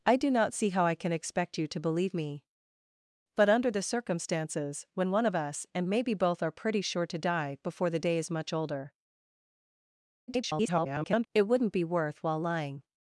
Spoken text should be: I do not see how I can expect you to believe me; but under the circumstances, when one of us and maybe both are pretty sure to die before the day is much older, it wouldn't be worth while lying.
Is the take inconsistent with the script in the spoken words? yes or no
yes